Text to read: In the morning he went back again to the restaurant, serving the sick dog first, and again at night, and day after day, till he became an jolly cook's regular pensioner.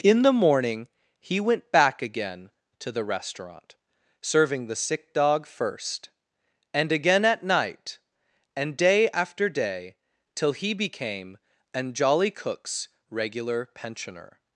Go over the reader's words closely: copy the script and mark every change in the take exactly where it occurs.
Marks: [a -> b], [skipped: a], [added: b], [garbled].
In the morning he went back again to the restaurant, serving the sick dog first, and again at night, and day after day, till he became an jolly cook's regular pensioner.